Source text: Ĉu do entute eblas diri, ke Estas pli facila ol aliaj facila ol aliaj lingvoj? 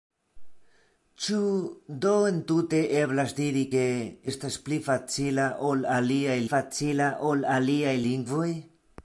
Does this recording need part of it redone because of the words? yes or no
no